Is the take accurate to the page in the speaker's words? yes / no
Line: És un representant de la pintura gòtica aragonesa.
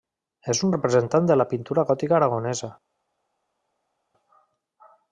yes